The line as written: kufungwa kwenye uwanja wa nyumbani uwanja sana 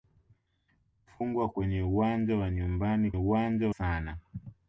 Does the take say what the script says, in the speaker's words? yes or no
yes